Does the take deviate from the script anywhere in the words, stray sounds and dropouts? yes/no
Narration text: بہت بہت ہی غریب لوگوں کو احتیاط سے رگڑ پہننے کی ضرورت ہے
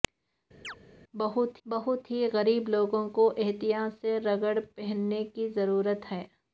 yes